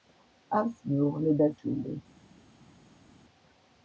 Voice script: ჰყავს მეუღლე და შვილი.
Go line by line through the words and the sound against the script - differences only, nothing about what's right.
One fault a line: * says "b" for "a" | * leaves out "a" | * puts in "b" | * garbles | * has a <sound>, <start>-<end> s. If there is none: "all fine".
all fine